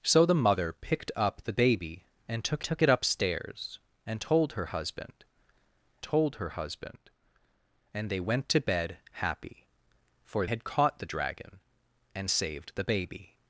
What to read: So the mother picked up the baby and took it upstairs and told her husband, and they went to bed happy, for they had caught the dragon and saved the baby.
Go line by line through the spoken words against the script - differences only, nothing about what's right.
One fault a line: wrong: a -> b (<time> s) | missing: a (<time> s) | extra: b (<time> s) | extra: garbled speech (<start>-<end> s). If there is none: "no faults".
extra: took (2.6 s)
extra: told her husband (6.0 s)
missing: they (10.5 s)